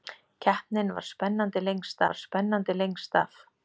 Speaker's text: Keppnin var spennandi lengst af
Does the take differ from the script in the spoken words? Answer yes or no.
yes